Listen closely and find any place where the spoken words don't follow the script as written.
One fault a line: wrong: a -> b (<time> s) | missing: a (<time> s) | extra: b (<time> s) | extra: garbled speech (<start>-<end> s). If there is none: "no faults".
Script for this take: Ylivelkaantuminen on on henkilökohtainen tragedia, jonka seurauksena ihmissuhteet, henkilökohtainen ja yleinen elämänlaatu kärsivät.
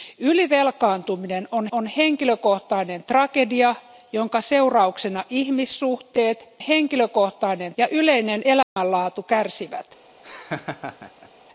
no faults